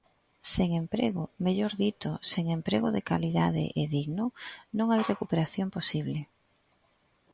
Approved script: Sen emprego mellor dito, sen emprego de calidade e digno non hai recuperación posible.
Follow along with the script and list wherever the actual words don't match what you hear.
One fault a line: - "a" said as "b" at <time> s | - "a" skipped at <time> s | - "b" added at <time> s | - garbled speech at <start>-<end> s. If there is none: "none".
none